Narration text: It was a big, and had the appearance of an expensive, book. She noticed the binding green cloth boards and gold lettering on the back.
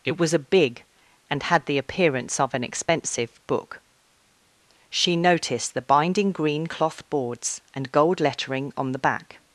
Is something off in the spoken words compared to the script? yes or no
no